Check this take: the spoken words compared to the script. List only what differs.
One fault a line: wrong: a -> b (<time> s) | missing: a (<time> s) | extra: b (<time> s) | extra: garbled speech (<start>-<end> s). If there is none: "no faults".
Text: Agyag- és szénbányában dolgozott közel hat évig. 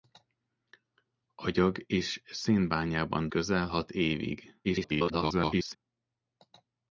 missing: dolgozott (3.3 s)
extra: garbled speech (4.6-5.8 s)